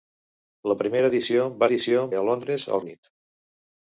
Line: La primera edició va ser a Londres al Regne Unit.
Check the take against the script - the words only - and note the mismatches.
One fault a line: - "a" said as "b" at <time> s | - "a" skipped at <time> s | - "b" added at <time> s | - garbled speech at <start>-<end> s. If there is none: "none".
- "ser" said as "edició" at 1.7 s
- "Regne" skipped at 2.8 s